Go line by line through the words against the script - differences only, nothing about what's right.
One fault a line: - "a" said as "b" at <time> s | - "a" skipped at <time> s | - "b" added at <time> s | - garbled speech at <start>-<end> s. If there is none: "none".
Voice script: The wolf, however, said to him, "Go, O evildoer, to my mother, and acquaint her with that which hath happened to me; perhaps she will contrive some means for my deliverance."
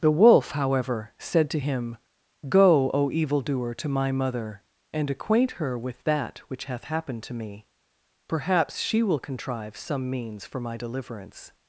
none